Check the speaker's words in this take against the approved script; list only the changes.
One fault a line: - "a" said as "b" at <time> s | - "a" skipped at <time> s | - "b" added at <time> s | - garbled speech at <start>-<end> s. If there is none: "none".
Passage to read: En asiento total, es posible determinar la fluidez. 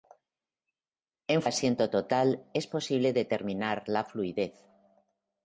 none